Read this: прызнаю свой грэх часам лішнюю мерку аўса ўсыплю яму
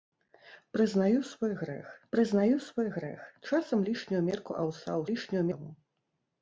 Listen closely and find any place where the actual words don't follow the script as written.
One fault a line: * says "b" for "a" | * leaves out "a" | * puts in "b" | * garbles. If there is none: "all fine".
* puts in "прызнаю свой грэх"
* says "лішнюю" for "ўсыплю"